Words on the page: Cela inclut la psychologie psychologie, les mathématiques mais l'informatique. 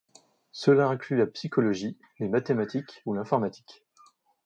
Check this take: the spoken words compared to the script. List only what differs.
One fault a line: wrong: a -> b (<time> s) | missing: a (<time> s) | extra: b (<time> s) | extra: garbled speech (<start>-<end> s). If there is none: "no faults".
missing: psychologie (2.0 s)
wrong: mais -> ou (3.0 s)